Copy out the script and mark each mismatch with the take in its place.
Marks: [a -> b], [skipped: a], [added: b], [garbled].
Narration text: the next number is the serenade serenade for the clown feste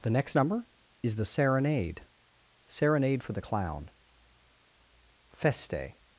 the next number is the serenade serenade for the clown feste